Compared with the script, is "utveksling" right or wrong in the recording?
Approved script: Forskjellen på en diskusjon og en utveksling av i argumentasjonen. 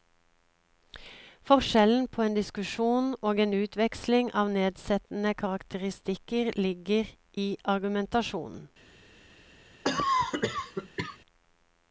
right